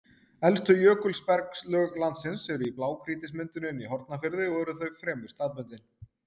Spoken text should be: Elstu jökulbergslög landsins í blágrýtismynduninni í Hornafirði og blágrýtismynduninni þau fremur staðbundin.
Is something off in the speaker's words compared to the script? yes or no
yes